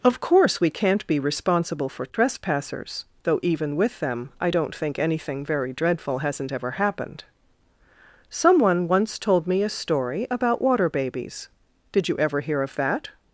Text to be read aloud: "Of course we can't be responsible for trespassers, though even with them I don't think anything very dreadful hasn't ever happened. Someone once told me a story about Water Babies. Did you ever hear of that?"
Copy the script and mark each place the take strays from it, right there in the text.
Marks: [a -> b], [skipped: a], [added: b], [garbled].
"Of course we can't be responsible for trespassers, though even with them I don't think anything very dreadful hasn't ever happened. Someone once told me a story about Water Babies. Did you ever hear of that?"